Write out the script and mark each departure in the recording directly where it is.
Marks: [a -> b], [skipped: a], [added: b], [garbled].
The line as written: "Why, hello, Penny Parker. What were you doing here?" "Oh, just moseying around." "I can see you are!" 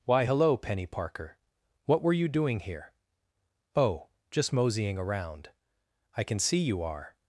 "Why, hello, Penny Parker. What were you doing here?" "Oh, just moseying around." "I can see you are!"